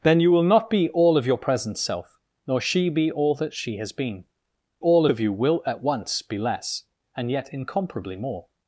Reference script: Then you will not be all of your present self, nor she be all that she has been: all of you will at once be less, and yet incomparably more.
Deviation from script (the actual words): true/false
false